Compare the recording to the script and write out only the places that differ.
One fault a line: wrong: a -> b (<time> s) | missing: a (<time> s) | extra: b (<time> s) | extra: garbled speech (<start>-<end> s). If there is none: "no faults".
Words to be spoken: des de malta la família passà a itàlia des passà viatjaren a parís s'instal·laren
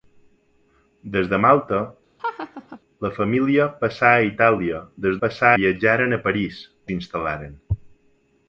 no faults